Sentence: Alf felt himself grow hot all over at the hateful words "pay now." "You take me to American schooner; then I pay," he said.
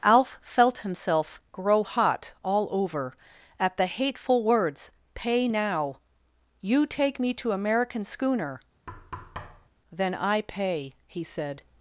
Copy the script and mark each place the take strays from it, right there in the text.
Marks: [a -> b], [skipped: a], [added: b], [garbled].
Alf felt himself grow hot all over at the hateful words "pay now." "You take me to American schooner; then I pay," he said.